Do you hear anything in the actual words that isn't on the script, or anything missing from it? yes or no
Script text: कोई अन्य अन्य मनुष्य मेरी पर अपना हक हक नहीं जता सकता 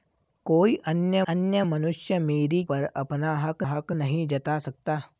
no